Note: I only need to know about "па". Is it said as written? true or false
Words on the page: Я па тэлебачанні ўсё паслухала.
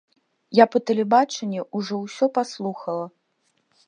true